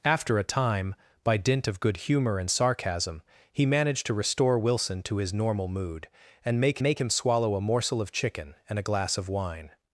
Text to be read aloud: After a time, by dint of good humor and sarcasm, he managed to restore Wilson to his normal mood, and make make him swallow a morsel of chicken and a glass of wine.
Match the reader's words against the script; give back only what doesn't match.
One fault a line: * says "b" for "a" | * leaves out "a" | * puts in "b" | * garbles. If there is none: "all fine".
all fine